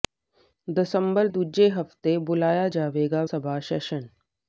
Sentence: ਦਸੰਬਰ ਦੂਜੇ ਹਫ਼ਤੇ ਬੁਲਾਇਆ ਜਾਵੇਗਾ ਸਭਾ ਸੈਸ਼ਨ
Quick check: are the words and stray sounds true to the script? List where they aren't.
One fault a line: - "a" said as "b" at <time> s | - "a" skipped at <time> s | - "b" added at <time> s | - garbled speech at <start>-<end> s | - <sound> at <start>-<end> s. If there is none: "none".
none